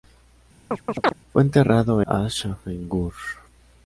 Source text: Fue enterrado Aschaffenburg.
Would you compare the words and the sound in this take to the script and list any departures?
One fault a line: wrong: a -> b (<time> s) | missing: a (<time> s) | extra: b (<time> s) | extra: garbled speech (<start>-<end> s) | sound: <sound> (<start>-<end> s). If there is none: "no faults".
sound: chirp (0.7-1.1 s)